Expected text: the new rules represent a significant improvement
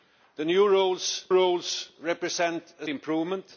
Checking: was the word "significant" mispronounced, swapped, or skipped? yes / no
yes